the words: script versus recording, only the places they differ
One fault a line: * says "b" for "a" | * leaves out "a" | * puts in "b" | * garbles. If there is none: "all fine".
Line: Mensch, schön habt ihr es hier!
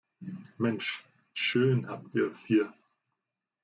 all fine